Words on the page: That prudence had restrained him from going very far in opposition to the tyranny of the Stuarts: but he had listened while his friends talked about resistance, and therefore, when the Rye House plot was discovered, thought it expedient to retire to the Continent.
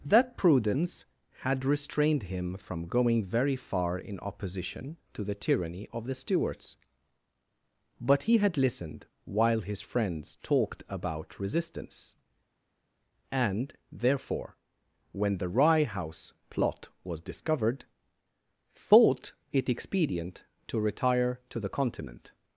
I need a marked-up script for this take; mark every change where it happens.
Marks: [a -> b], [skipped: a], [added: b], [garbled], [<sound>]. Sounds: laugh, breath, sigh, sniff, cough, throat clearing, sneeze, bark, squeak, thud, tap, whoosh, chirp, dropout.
That prudence had restrained him from going very far in opposition to the tyranny of the Stuarts: but he had listened while his friends talked about resistance, and therefore, when the Rye House plot was discovered, thought it expedient to retire to the Continent.